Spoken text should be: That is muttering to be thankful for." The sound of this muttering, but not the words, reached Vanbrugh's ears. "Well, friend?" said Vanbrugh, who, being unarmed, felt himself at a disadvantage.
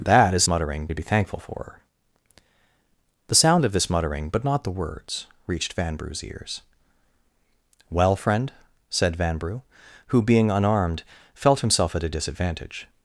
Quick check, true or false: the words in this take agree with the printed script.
true